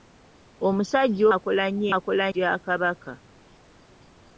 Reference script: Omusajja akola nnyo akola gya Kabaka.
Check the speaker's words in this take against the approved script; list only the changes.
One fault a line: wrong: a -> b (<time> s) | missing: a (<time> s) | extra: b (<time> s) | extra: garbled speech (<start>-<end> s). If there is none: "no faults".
no faults